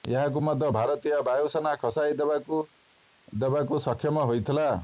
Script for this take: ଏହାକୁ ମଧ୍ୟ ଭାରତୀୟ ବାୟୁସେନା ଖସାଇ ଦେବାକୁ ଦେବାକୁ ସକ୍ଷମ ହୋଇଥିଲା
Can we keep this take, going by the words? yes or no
yes